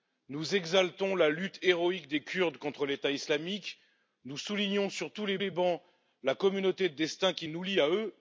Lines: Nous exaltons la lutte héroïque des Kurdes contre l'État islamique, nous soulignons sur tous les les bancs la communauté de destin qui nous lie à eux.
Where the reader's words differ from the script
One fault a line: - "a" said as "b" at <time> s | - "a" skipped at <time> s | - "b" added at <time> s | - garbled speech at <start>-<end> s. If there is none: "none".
none